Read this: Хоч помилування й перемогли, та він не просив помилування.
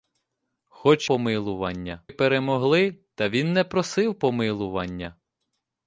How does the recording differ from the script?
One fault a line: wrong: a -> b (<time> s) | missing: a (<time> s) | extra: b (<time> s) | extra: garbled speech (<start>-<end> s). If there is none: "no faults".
no faults